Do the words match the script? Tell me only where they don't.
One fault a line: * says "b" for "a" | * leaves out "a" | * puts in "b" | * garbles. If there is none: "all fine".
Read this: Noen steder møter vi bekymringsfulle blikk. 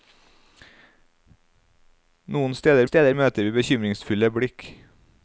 * puts in "steder"